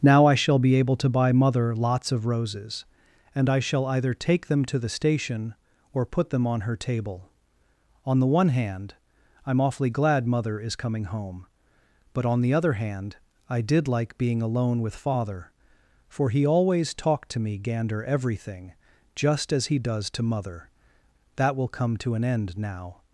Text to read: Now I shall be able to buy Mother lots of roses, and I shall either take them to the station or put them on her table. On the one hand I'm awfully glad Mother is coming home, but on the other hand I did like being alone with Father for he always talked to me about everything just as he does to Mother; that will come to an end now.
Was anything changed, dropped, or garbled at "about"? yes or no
yes